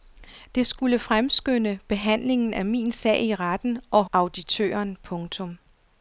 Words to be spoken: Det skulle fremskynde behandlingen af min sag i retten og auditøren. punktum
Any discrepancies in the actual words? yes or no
no